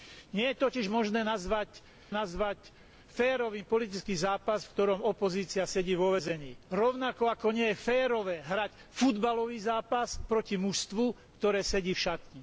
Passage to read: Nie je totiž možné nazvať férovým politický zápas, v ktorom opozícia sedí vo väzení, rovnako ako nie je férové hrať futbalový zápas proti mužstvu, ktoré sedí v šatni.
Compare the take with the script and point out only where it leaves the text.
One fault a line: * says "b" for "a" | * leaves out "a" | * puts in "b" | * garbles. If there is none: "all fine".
* puts in "nazvať"